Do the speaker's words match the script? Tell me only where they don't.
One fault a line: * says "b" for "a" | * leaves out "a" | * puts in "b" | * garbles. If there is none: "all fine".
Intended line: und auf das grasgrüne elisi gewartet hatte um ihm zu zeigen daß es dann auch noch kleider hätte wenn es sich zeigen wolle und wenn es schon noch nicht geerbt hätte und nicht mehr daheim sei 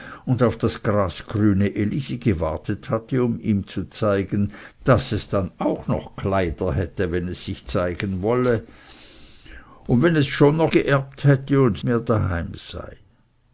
* leaves out "nicht"
* leaves out "nicht"